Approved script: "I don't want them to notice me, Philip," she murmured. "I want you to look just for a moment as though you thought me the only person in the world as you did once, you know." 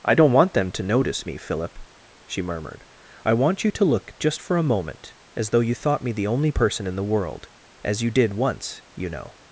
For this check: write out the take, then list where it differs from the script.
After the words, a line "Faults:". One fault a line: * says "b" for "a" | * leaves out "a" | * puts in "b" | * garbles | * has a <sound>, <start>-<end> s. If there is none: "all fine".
"I don't want them to notice me, Philip," she murmured. "I want you to look just for a moment as though you thought me the only person in the world as you did once, you know."
Faults:
all fine